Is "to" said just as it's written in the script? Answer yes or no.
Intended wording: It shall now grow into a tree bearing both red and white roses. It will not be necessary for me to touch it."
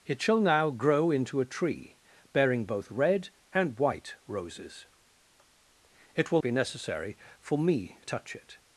no